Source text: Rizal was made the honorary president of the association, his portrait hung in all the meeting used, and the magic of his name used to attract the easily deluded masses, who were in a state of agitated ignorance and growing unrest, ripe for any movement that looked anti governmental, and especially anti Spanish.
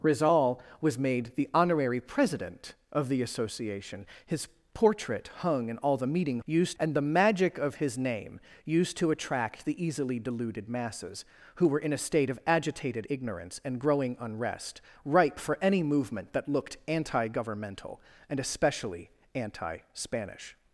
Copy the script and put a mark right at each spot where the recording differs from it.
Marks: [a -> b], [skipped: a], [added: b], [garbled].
Rizal was made the honorary president of the association, his portrait hung in all the meeting used, and the magic of his name used to attract the easily deluded masses, who were in a state of agitated ignorance and growing unrest, ripe for any movement that looked anti governmental, and especially anti Spanish.